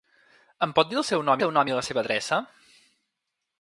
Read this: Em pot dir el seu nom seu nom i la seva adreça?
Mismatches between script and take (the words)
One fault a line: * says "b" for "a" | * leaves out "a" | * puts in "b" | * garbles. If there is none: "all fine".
all fine